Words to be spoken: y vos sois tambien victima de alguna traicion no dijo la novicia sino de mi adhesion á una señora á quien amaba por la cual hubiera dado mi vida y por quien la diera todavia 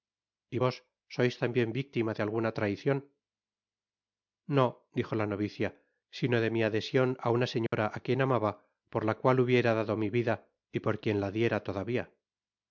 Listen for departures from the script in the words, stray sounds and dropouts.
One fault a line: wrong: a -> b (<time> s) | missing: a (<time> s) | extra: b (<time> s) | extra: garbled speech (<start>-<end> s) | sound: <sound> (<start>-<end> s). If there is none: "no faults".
sound: dropout (7.7-7.7 s)